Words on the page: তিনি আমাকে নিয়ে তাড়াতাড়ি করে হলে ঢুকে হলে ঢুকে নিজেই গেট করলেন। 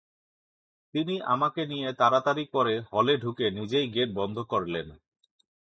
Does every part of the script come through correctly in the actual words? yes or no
no